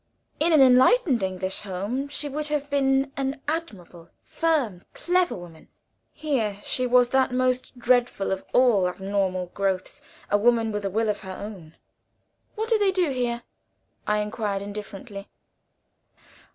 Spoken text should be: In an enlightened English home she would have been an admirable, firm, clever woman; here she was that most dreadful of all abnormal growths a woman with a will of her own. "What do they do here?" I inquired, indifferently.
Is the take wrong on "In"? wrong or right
right